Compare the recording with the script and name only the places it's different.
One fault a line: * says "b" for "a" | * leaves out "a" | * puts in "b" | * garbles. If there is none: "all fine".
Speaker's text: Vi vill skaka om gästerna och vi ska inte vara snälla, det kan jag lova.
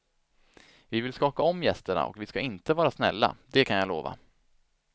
all fine